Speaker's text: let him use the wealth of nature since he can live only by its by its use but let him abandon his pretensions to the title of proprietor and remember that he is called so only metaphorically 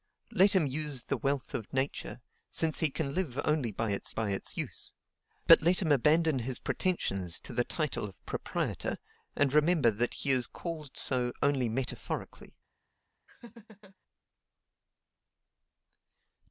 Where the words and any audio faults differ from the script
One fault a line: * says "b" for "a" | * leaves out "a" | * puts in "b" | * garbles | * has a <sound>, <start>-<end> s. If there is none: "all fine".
* has a laugh, 13.3-14.0 s